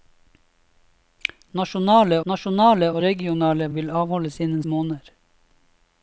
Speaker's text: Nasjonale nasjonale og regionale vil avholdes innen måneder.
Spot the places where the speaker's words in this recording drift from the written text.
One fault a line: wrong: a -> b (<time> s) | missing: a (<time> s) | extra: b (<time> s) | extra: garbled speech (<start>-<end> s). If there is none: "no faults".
no faults